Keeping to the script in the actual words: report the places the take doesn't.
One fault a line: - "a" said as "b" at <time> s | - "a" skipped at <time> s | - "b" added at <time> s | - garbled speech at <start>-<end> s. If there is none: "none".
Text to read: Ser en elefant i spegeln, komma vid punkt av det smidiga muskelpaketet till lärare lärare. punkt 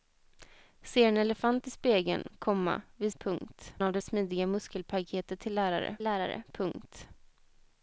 none